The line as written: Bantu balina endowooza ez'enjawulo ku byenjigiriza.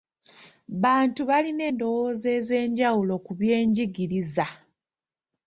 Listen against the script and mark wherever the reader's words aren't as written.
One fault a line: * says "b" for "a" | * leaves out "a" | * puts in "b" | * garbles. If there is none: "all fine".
all fine